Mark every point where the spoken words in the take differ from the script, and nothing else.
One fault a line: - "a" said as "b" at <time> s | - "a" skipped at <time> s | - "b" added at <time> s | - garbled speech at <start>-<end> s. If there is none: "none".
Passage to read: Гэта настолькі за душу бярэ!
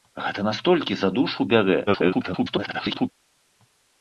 - garbled speech at 1.9-3.1 s